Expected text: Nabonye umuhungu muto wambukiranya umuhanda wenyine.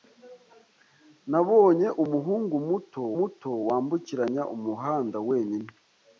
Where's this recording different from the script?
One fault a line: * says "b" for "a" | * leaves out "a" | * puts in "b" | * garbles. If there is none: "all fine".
* puts in "muto"